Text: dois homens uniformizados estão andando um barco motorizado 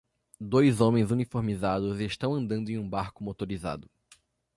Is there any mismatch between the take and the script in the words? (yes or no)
yes